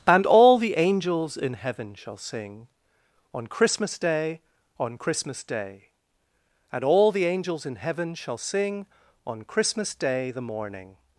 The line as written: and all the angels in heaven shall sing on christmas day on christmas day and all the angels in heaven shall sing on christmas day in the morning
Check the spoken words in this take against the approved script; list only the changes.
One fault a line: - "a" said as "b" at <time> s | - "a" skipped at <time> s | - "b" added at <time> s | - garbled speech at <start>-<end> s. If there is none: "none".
- "in" skipped at 10.3 s